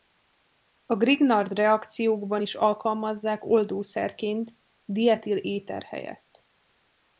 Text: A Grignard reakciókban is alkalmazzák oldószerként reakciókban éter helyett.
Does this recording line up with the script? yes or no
no